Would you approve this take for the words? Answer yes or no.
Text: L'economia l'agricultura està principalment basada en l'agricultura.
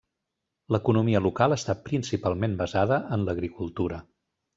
no